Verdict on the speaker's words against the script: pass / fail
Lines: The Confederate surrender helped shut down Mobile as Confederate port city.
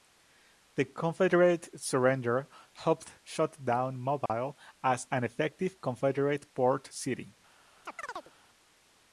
fail